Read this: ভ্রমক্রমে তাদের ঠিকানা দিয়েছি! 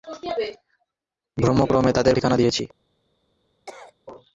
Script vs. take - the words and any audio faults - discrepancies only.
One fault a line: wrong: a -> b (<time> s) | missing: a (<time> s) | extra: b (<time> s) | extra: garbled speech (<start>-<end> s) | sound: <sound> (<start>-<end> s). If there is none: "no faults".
sound: cough (3.7-3.9 s)